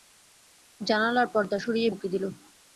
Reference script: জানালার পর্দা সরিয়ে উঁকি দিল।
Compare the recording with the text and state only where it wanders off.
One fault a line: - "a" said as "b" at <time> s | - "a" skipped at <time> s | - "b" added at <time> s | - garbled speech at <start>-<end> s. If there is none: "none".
none